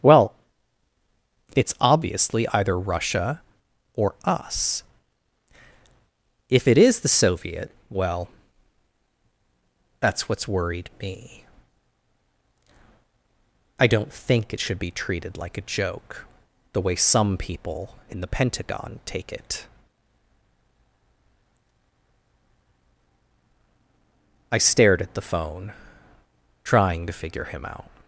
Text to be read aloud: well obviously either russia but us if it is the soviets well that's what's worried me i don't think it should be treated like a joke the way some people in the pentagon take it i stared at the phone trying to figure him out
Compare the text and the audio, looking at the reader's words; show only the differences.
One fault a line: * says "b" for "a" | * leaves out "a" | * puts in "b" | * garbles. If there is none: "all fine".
* puts in "it's"
* says "or" for "but"
* says "soviet" for "soviets"